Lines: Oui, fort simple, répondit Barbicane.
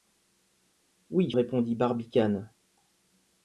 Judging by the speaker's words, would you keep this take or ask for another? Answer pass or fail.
fail